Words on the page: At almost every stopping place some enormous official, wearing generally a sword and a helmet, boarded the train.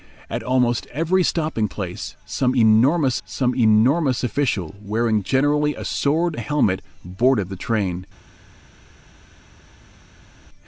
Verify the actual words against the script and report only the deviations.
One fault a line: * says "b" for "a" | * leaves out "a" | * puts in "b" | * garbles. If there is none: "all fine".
* puts in "some enormous"
* leaves out "and"